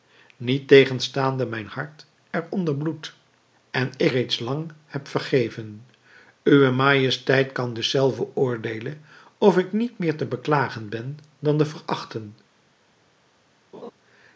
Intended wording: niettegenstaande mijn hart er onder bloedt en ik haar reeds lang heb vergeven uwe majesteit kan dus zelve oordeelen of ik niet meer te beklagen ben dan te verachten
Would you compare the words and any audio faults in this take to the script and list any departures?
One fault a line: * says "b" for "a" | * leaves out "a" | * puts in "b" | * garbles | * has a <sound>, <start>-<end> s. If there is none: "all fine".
* leaves out "haar"
* has a laugh, 13.7-13.9 s